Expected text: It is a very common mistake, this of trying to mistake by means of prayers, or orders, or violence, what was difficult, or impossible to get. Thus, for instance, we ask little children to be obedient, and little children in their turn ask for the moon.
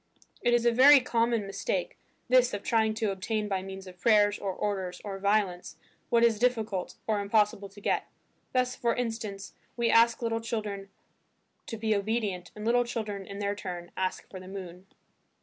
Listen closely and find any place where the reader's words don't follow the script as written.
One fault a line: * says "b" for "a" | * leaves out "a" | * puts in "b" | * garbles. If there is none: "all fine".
* says "obtain" for "mistake"
* says "is" for "was"